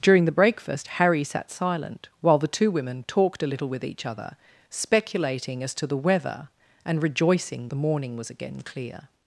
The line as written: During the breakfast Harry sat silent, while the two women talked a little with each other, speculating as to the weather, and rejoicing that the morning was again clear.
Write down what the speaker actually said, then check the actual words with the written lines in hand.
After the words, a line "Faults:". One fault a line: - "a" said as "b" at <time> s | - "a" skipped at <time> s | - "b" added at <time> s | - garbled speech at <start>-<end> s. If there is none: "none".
During the breakfast Harry sat silent, while the two women talked a little with each other, speculating as to the weather, and rejoicing the morning was again clear.
Faults:
- "that" skipped at 7.7 s